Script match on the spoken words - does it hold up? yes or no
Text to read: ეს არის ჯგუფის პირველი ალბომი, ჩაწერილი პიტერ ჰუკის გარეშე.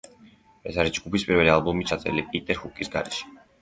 yes